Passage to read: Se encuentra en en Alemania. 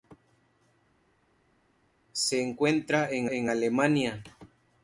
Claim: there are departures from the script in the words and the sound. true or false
false